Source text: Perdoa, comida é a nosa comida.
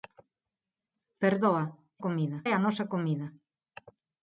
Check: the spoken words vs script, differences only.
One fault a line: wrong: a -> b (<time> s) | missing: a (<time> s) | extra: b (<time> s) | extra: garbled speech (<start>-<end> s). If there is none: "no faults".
no faults